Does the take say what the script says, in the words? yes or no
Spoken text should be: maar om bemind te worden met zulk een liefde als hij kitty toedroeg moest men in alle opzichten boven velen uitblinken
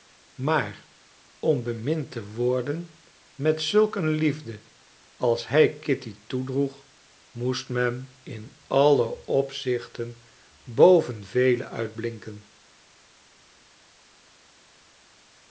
yes